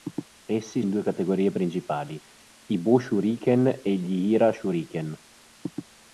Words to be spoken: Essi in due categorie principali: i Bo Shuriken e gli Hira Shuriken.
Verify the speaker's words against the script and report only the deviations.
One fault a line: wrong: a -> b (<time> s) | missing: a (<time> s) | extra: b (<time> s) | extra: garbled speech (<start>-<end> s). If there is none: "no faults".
no faults